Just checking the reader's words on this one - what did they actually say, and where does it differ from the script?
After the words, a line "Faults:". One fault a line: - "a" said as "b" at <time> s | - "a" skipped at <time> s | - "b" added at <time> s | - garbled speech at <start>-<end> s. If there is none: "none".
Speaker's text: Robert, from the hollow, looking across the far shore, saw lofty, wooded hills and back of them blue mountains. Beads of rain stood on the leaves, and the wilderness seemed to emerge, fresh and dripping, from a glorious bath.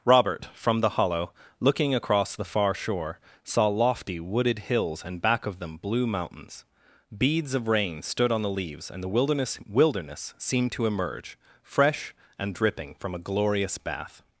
Robert, from the hollow, looking across the far shore, saw lofty, wooded hills and back of them blue mountains. Beads of rain stood on the leaves, and the wilderness wilderness seemed to emerge, fresh and dripping, from a glorious bath.
Faults:
- "wilderness" added at 9.7 s